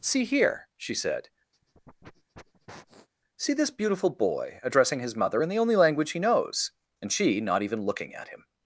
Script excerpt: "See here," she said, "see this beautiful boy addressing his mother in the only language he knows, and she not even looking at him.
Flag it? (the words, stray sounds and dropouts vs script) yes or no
yes